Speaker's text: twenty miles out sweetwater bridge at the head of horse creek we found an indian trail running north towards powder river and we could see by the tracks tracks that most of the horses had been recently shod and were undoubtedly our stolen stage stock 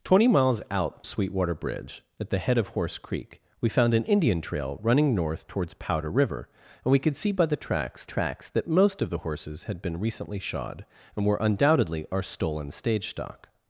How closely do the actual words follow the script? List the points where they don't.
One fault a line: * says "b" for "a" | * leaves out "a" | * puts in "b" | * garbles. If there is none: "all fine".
all fine